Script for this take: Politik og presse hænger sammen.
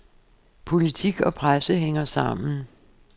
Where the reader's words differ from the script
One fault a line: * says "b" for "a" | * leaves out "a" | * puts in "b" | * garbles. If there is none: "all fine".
all fine